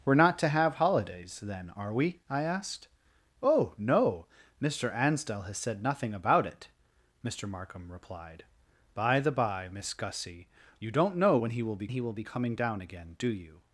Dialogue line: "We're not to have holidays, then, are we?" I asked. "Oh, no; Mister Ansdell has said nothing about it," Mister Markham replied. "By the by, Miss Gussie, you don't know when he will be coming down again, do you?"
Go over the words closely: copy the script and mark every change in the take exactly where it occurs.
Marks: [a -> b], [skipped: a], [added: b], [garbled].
"We're not to have holidays, then, are we?" I asked. "Oh, no; Mister Ansdell has said nothing about it," Mister Markham replied. "By the by, Miss Gussie, you don't know when he will be [added: he will be] coming down again, do you?"